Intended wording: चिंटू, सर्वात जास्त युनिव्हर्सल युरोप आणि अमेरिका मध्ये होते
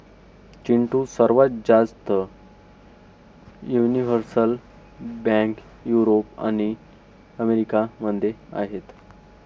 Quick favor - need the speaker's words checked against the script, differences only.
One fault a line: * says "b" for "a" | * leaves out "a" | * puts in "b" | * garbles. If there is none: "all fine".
* puts in "बँक"
* says "आहेत" for "होते"